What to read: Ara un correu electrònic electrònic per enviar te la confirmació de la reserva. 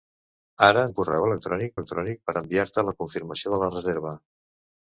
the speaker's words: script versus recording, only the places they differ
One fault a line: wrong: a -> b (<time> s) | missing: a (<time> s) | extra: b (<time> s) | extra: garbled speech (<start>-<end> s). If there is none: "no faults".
no faults